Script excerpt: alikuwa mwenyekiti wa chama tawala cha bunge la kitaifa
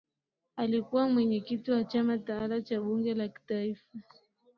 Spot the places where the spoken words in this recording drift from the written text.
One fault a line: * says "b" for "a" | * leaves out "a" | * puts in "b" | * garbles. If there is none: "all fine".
all fine